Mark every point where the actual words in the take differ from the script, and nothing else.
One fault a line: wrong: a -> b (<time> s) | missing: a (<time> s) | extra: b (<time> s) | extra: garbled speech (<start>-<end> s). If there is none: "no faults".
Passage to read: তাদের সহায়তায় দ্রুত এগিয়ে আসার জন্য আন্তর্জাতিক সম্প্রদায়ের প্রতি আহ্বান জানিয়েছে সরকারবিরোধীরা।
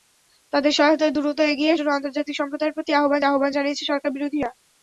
missing: আসার (1.8 s)
extra: আহ্বান (3.2 s)